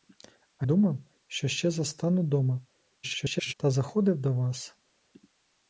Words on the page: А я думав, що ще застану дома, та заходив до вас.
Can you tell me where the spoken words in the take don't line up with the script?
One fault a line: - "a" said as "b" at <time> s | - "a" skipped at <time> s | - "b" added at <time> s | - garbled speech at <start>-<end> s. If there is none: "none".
- "я" skipped at 0.7 s
- garbled speech at 3.0-3.5 s